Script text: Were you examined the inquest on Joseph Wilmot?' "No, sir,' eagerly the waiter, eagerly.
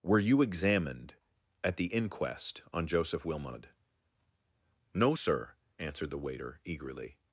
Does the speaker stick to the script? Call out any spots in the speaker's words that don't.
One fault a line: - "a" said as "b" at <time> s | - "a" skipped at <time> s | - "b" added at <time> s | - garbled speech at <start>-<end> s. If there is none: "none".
- "at" added at 1.6 s
- "eagerly" said as "answered" at 5.8 s